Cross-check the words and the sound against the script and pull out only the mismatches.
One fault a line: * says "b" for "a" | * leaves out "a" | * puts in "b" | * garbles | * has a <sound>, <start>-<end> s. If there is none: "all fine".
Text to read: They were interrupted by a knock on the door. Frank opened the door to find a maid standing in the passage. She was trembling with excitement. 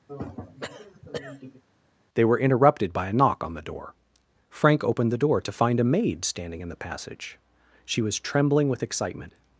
* has a throat clearing, 0.1-1.6 s